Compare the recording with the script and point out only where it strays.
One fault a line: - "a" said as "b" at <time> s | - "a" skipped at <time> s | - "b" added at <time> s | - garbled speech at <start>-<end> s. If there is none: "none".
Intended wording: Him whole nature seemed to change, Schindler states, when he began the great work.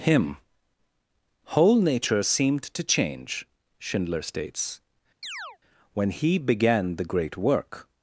none